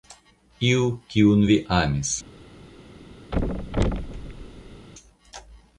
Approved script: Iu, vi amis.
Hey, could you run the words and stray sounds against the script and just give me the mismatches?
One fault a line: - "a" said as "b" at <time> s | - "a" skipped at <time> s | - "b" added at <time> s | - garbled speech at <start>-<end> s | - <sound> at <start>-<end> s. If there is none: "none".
- "kiun" added at 1.1 s
- thud at 3.3-4.9 s